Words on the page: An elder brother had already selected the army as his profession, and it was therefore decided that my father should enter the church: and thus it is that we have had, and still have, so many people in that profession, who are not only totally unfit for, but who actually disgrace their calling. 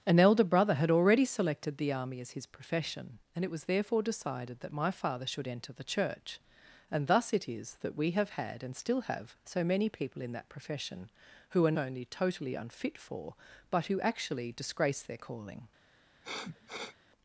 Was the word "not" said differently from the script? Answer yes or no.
yes